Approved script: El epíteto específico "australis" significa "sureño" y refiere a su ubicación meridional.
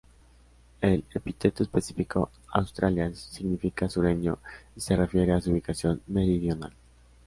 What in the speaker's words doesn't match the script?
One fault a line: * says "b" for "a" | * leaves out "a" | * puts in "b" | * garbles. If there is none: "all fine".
* puts in "se"